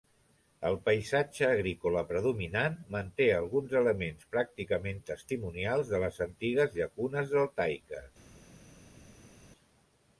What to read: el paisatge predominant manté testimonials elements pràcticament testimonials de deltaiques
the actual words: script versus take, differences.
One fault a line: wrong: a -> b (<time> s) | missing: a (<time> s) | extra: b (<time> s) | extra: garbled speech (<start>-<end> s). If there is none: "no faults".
extra: agrícola (1.5 s)
wrong: testimonials -> alguns (3.4 s)
extra: les antigues llacunes (6.0 s)